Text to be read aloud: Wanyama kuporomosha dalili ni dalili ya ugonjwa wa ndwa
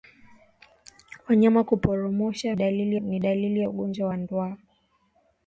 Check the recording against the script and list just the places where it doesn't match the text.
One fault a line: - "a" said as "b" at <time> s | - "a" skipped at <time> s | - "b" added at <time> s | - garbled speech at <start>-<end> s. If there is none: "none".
none